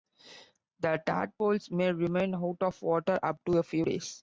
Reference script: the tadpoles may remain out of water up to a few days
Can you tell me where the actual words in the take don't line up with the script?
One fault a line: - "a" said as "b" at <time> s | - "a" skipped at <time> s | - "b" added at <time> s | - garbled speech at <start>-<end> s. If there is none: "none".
none